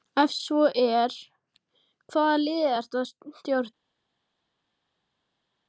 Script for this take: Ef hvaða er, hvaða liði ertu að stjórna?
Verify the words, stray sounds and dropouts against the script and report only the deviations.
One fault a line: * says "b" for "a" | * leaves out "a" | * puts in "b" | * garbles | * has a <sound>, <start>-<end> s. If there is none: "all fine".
* says "svo" for "hvaða"